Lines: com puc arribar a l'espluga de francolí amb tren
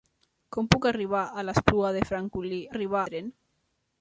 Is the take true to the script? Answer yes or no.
no